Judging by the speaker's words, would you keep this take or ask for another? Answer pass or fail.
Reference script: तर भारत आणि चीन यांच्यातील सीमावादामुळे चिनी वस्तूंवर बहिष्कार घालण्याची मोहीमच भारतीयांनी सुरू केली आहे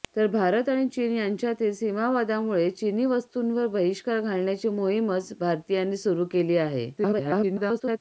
fail